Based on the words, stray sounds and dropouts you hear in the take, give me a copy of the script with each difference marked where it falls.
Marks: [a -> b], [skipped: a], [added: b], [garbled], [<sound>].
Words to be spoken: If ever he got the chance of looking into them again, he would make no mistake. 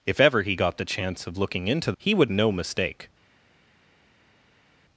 If ever he got the chance of looking into [skipped: them again,] he would [skipped: make] no mistake.